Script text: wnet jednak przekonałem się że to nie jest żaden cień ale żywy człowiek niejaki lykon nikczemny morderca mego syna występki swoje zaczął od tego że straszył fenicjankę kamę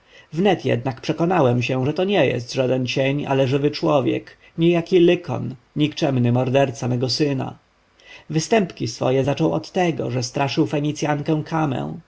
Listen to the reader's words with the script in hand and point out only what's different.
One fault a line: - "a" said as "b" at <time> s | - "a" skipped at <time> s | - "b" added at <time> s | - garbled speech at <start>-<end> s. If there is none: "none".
none